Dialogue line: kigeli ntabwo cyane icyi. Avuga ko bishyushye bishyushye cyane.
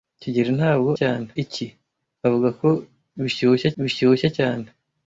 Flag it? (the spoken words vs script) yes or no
no